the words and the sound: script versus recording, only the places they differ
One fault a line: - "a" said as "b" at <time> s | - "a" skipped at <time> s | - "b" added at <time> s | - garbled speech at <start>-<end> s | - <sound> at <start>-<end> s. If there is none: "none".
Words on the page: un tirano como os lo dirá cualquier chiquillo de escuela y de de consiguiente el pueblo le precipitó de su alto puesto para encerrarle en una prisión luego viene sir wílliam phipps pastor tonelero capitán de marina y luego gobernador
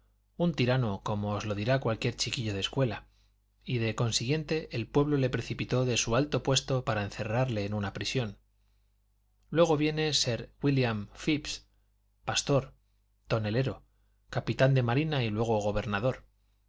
- "de" skipped at 3.9 s